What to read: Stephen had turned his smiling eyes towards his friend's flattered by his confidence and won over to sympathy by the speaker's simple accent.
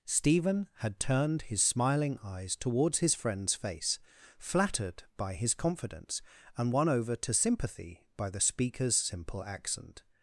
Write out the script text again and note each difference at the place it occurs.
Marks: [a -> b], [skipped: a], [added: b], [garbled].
Stephen had turned his smiling eyes towards his friend's [added: face] flattered by his confidence and won over to sympathy by the speaker's simple accent.